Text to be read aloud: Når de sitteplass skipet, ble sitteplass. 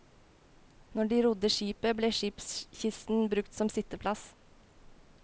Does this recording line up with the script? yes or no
no